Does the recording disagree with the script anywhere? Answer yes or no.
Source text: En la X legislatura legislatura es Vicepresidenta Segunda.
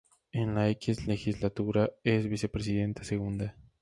yes